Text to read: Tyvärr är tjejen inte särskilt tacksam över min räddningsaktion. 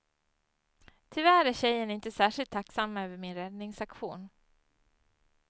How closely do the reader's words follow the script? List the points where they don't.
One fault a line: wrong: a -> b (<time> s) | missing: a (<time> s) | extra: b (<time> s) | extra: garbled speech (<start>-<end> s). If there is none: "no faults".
no faults